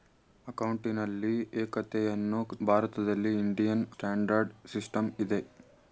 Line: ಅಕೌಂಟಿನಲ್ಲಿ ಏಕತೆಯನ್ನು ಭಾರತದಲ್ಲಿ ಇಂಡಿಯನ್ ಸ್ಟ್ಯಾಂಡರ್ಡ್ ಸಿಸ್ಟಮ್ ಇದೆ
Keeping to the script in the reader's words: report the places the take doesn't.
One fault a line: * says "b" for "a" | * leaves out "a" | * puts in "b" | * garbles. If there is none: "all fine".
all fine